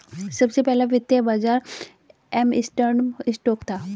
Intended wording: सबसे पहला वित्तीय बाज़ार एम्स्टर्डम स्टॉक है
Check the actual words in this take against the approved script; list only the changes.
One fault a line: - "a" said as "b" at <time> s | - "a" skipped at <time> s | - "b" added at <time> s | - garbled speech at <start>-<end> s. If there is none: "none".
- "है" said as "था" at 3.6 s